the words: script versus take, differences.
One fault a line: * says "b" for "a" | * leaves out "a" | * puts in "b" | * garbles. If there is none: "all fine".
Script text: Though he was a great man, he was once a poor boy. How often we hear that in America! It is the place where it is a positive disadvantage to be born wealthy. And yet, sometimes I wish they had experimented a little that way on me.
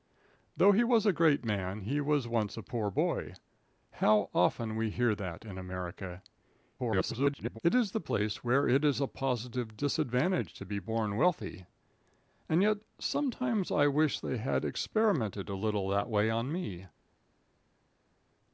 * garbles